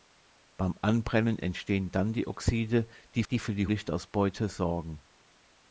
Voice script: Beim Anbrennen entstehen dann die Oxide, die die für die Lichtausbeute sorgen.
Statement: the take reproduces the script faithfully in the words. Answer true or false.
true